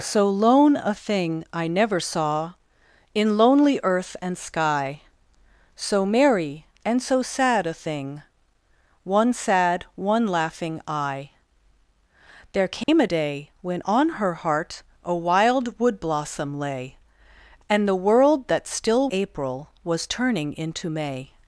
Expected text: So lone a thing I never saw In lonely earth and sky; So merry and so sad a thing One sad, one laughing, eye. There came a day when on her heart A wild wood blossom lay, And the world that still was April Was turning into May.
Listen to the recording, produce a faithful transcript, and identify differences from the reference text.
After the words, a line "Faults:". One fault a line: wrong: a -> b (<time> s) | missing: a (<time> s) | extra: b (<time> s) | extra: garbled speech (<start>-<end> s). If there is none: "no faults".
So lone a thing I never saw In lonely earth and sky; So merry and so sad a thing One sad, one laughing, eye. There came a day when on her heart A wild wood blossom lay, And the world that still April Was turning into May.
Faults:
missing: was (19.1 s)